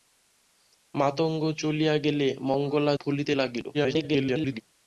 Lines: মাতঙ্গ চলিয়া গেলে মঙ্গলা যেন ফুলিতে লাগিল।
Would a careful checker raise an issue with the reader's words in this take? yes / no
yes